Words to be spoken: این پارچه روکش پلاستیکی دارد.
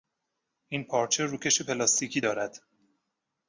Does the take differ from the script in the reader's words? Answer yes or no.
no